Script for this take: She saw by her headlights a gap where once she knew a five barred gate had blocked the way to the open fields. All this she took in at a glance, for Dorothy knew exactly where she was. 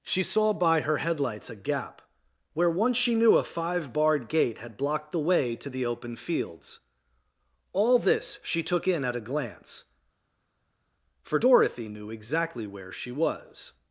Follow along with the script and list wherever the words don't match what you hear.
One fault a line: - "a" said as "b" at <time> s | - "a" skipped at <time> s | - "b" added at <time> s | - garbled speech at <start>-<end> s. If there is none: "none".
none